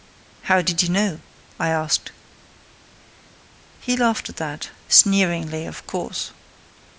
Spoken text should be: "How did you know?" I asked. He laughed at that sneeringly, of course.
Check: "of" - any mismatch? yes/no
no